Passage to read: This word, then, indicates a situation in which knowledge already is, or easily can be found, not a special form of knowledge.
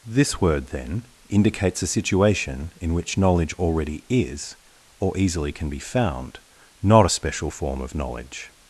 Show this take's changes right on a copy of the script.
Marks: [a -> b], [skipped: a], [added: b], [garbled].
This word, then, indicates a situation in which knowledge already is, or easily can be found, not a special form of knowledge.